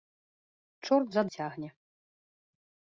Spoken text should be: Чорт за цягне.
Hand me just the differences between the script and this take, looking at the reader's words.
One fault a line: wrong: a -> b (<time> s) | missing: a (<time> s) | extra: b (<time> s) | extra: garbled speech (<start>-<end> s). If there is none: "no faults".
no faults